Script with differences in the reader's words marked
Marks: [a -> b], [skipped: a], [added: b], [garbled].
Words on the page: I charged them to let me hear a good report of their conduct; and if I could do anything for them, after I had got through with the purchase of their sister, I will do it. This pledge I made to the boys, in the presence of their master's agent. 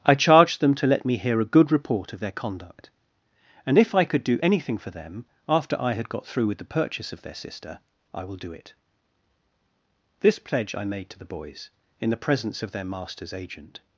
I charged them to let me hear a good report of their conduct; and if I could do anything for them, after I had got through with the purchase of their sister, I will do it. This pledge I made to the boys, in the presence of their master's agent.